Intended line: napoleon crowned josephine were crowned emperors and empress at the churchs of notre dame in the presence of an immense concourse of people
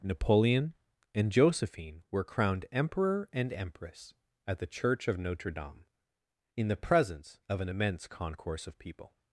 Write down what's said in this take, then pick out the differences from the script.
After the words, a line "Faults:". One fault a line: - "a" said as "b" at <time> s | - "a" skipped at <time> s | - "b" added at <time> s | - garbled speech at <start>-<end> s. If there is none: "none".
napoleon and josephine were crowned emperor and empress at the church of notre dame in the presence of an immense concourse of people
Faults:
- "crowned" said as "and" at 1.1 s
- "emperors" said as "emperor" at 2.7 s
- "churchs" said as "church" at 4.7 s